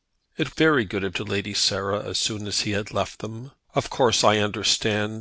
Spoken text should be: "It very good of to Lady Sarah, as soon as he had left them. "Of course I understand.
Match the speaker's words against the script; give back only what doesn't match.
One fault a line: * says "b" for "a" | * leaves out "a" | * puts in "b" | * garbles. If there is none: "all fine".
all fine